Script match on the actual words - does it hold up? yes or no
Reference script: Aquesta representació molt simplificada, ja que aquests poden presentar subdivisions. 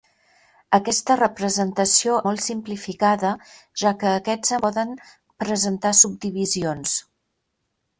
yes